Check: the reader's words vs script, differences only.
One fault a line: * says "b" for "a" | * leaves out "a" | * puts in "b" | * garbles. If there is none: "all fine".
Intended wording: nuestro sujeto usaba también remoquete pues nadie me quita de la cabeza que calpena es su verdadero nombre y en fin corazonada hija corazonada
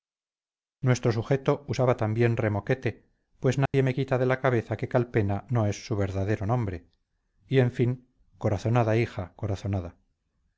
* puts in "no"